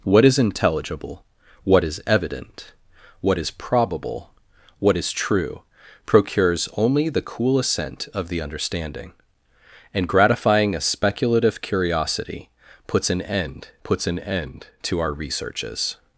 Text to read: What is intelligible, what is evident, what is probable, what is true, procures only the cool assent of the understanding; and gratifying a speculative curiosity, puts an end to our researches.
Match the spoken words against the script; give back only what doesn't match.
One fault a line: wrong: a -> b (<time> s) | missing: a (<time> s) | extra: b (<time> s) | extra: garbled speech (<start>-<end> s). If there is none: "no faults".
extra: puts an end (13.8 s)